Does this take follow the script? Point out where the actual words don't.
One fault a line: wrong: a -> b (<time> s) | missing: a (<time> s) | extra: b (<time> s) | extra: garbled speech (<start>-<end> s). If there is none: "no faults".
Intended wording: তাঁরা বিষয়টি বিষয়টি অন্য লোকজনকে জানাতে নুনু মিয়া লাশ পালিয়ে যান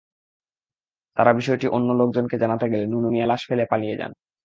missing: বিষয়টি (1.7 s)
extra: গেলে (2.7 s)
extra: ফেলে (3.5 s)